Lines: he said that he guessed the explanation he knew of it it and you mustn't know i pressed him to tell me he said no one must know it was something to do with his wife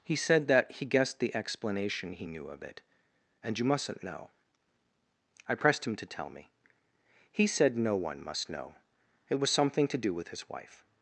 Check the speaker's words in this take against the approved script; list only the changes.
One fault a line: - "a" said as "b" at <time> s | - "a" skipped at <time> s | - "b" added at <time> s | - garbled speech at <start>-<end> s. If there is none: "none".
- "it" skipped at 2.8 s